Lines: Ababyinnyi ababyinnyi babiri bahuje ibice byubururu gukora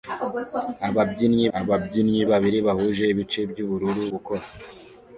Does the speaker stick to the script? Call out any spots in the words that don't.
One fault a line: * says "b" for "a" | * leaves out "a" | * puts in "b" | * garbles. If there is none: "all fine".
all fine